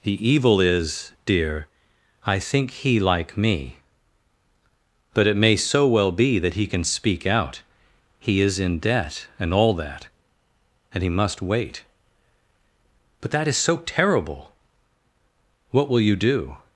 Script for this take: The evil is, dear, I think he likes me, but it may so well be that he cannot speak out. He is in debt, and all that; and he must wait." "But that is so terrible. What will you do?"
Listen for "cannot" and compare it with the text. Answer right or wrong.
wrong